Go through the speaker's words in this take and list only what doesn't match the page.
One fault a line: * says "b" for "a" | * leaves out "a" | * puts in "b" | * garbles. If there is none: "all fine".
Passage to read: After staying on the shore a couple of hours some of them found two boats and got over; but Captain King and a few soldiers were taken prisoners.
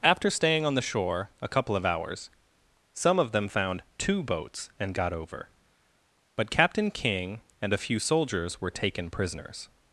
all fine